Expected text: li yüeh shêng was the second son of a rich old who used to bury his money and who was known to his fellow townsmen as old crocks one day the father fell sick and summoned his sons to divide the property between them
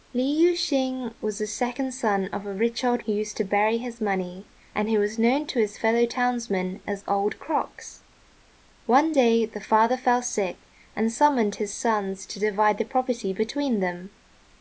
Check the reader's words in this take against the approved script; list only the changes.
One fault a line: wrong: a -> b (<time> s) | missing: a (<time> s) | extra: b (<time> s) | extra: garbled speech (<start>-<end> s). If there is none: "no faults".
no faults